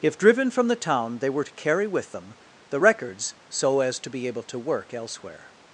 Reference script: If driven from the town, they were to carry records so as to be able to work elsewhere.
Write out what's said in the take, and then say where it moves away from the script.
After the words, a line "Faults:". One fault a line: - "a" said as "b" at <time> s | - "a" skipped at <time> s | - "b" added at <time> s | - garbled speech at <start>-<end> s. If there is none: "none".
If driven from the town, they were to carry with them the records so as to be able to work elsewhere.
Faults:
- "with them the" added at 1.8 s